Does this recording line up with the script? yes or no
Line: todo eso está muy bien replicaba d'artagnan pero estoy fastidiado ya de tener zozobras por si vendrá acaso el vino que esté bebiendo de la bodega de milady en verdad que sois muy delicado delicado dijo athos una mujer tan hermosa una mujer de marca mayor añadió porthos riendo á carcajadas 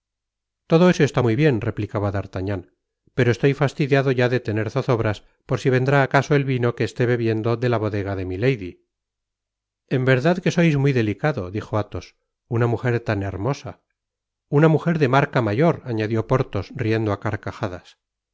no